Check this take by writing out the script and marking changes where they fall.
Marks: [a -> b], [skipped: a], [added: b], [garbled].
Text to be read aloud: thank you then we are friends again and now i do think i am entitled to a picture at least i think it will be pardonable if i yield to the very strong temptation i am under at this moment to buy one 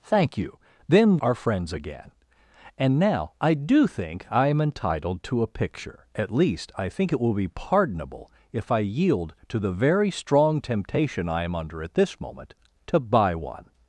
thank you then [skipped: we] are friends again and now i do think i am entitled to a picture at least i think it will be pardonable if i yield to the very strong temptation i am under at this moment to buy one